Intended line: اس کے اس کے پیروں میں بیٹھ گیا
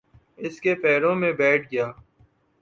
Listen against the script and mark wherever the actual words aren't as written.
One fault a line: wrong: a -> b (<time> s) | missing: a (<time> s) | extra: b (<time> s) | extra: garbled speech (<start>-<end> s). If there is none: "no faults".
missing: اس کے (0.7 s)